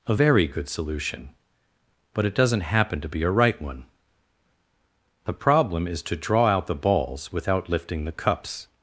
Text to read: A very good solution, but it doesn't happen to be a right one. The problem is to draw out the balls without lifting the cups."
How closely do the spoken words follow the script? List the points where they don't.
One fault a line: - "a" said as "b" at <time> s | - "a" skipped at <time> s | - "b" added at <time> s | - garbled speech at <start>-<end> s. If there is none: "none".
none